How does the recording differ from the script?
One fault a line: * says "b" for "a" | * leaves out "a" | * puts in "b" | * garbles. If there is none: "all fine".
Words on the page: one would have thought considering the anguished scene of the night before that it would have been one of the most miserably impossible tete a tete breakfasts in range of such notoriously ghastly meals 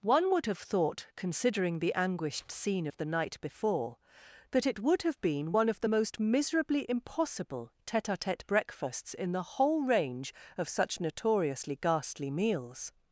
* puts in "the whole"